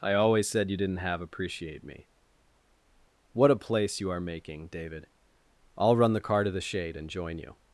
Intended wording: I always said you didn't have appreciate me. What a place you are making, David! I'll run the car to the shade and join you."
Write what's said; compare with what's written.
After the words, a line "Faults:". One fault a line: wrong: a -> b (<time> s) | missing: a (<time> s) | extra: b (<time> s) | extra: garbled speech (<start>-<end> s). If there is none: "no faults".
I always said you didn't have appreciate me. What a place you are making, David! I'll run the car to the shade and join you."
Faults:
no faults